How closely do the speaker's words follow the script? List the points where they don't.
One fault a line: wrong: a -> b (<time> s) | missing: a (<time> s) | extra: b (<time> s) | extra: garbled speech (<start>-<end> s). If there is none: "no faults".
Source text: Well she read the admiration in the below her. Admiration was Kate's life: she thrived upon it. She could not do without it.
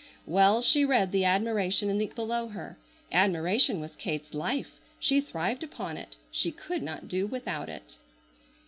no faults